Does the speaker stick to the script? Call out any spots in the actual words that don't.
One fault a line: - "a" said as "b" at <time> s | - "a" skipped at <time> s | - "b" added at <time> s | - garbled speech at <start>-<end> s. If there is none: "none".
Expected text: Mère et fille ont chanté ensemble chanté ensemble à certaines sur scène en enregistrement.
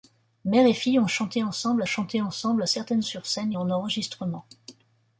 none